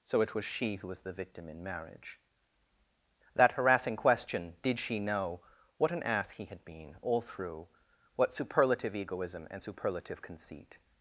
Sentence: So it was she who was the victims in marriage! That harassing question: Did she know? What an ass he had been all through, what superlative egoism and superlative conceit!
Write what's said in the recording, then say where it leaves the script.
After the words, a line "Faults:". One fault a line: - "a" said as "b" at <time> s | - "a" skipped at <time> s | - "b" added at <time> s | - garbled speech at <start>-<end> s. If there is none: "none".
So it was she who was the victim in marriage! That harassing question: Did she know? What an ass he had been all through, what superlative egoism and superlative conceit!
Faults:
- "victims" said as "victim" at 1.1 s